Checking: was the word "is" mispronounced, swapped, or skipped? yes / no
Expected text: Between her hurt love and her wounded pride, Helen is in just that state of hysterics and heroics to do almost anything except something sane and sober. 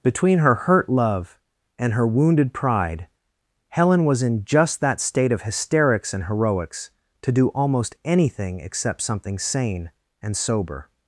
yes